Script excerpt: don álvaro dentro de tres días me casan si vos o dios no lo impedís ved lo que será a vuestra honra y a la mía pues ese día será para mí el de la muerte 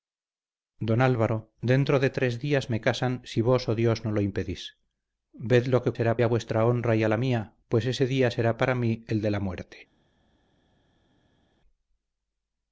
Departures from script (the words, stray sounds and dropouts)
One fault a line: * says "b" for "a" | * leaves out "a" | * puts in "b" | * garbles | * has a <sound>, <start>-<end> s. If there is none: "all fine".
all fine